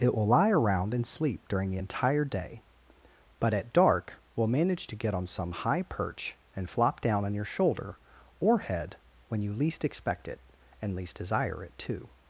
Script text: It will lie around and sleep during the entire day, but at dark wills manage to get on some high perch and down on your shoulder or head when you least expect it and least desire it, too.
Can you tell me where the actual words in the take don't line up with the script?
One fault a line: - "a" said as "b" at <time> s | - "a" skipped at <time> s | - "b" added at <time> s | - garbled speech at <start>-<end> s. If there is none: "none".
- "wills" said as "will" at 4.3 s
- "flop" added at 6.7 s